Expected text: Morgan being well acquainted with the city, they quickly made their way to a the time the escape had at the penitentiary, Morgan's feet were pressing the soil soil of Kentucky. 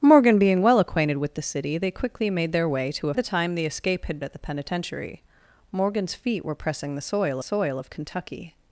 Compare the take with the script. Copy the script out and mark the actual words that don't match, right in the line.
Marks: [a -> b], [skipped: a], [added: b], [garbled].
Morgan being well acquainted with the city, they quickly made their way to a the time the escape had at the penitentiary, Morgan's feet were pressing the soil soil of Kentucky.